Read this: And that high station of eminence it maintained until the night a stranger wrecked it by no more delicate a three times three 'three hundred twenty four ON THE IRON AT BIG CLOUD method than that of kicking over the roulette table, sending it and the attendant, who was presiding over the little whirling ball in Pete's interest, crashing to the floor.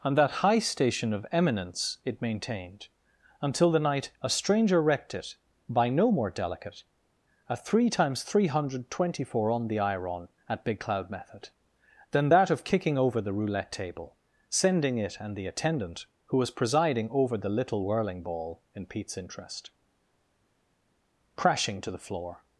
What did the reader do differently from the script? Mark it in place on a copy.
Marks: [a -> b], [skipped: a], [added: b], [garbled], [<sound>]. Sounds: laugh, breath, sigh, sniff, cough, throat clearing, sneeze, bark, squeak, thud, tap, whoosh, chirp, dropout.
And that high station of eminence it maintained until the night a stranger wrecked it by no more delicate a three times three [skipped: 'three] hundred twenty four ON THE IRON AT BIG CLOUD method than that of kicking over the roulette table, sending it and the attendant, who was presiding over the little whirling ball in Pete's interest, crashing to the floor.